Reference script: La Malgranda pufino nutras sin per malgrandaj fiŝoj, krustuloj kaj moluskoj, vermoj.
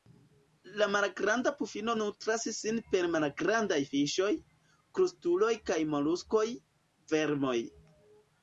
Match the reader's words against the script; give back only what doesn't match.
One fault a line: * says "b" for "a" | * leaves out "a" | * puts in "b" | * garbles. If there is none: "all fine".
all fine